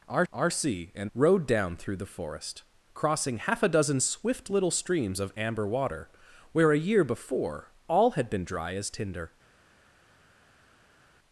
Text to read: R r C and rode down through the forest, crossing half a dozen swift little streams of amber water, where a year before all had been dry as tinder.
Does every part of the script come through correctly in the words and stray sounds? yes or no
yes